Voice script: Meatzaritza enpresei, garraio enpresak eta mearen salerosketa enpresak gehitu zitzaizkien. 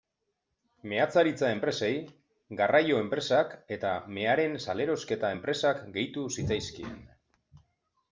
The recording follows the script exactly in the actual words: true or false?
true